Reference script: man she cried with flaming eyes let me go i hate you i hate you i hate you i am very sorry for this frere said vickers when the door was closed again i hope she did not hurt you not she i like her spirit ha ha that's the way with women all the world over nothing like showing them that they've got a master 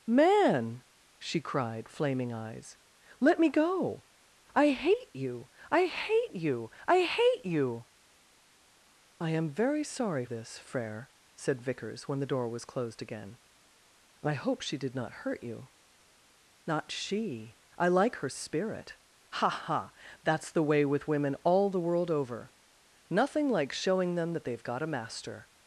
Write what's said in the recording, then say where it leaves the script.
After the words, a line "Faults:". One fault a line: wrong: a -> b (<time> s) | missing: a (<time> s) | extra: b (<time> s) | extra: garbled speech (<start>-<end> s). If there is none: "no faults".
man she cried flaming eyes let me go i hate you i hate you i hate you i am very sorry this frere said vickers when the door was closed again i hope she did not hurt you not she i like her spirit ha ha that's the way with women all the world over nothing like showing them that they've got a master
Faults:
missing: with (1.9 s)
missing: for (10.3 s)